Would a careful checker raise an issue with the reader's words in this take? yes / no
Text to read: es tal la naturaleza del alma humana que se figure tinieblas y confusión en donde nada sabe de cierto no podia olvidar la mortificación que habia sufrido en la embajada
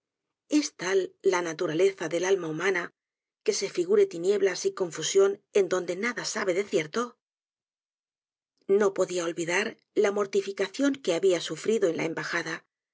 no